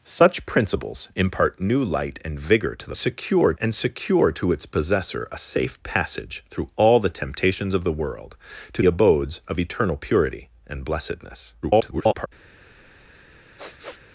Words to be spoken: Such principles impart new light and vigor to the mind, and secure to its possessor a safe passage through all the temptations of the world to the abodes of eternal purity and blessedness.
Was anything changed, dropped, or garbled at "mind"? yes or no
yes